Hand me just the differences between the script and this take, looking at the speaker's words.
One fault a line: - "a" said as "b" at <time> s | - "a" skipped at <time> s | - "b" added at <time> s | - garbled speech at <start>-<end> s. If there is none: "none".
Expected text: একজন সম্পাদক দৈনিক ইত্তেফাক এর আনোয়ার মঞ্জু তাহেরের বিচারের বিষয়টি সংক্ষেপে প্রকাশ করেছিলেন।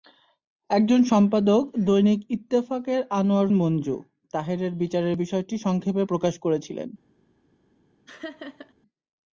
none